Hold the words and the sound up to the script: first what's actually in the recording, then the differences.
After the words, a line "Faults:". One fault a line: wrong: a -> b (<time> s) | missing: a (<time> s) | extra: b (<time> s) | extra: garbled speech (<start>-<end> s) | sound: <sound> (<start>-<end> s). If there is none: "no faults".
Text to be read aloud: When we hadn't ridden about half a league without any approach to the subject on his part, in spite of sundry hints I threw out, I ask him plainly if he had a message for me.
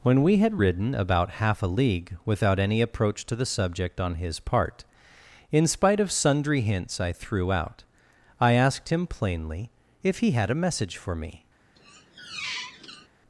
When we had ridden about half a league without any approach to the subject on his part, in spite of sundry hints I threw out, I asked him plainly if he had a message for me.
Faults:
wrong: hadn't -> had (0.4 s)
wrong: ask -> asked (8.5 s)
sound: squeak (11.8-13.1 s)